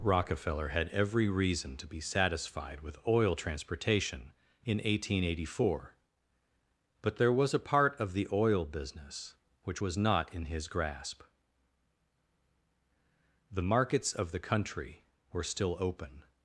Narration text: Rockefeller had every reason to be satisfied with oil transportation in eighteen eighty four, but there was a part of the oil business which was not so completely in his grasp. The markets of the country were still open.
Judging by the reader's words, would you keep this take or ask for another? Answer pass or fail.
fail